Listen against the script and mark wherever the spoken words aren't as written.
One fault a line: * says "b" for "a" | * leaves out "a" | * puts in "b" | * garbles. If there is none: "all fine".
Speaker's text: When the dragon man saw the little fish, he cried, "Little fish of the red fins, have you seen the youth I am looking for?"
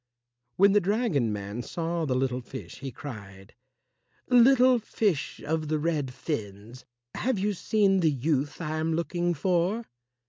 all fine